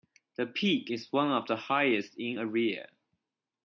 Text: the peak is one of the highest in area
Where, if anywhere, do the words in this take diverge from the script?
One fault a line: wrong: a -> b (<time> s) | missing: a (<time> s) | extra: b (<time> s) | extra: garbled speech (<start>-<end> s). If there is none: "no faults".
no faults